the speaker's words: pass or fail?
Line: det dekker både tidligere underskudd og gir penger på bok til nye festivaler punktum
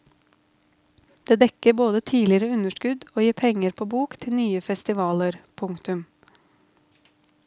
pass